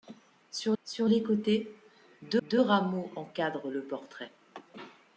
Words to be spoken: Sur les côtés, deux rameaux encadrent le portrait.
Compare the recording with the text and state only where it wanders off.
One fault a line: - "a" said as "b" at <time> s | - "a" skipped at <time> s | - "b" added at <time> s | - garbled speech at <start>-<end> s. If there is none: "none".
- "sur" added at 0.8 s
- "deux" added at 2.4 s